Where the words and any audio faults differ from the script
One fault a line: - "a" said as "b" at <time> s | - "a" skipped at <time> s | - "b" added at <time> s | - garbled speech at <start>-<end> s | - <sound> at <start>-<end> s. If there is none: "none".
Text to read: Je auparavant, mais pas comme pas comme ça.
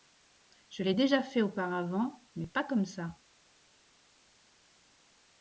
- "l'ai déjà fait" added at 0.8 s
- "pas comme" skipped at 2.8 s